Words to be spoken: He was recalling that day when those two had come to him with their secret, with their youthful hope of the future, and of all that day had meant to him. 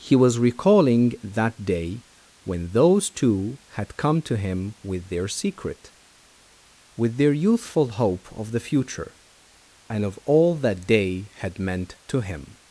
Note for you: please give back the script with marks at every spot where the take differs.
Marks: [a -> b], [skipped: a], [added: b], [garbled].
He was recalling that day when those two had come to him with their secret, with their youthful hope of the future, and of all that day had meant to him.